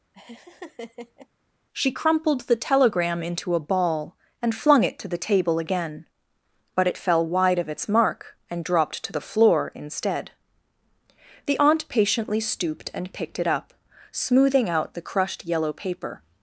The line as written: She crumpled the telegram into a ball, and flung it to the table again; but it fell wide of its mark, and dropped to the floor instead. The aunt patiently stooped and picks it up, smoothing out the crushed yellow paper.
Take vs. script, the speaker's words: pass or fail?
fail